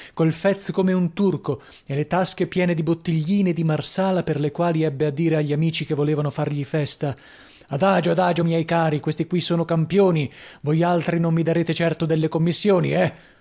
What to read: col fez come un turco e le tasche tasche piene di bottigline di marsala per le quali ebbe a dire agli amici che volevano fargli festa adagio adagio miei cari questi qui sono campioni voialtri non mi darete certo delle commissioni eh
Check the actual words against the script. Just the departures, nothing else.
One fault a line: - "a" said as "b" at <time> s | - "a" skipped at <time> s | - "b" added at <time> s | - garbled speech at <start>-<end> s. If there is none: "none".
- "tasche" skipped at 2.5 s